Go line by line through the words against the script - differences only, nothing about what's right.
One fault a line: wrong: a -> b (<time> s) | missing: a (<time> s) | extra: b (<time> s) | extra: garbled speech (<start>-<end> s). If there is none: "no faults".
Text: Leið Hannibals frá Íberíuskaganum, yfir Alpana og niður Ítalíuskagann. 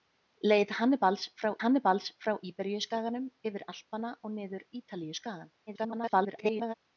extra: Hannibals frá (1.6 s)
extra: garbled speech (5.7-6.7 s)